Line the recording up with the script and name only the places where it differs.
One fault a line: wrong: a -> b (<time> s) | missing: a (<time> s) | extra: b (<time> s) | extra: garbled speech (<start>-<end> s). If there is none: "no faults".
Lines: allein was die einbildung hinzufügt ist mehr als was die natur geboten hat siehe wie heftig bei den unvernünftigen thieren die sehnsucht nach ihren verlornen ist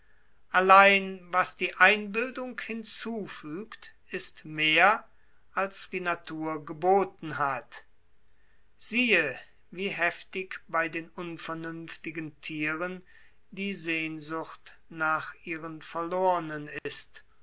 missing: was (5.9 s)